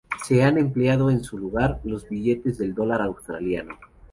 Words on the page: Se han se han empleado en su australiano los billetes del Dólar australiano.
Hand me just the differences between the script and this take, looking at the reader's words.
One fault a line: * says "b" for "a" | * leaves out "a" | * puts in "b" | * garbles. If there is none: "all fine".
* leaves out "se han"
* says "lugar" for "australiano"